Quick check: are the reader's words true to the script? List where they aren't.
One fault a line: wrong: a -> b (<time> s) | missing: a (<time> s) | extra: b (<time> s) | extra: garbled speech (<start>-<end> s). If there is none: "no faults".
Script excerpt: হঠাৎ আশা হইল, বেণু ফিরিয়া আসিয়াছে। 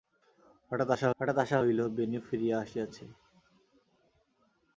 extra: হঠাৎ আশা (1.2 s)